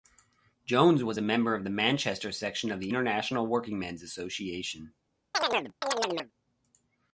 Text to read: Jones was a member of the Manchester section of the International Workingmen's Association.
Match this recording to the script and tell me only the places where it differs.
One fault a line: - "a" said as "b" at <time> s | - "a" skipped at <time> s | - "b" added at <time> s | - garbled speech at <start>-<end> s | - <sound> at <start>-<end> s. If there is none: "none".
- chirp at 5.3-6.3 s